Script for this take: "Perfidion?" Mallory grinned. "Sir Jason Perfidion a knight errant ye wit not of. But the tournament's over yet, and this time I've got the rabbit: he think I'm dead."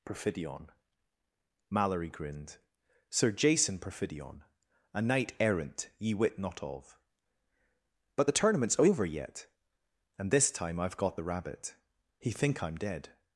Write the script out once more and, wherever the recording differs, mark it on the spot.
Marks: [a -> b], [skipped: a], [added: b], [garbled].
"Perfidion?" Mallory grinned. "Sir Jason Perfidion a knight errant ye wit not of. But the tournament's over yet, and this time I've got the rabbit: he think I'm dead."